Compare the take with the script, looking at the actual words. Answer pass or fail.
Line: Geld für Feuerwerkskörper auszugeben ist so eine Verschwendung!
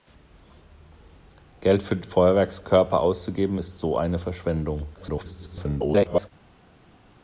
fail